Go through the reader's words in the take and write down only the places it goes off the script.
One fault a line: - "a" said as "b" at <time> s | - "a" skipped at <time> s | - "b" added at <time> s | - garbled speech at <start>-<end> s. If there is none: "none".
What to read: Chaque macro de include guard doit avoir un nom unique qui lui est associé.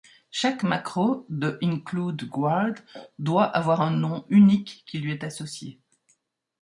none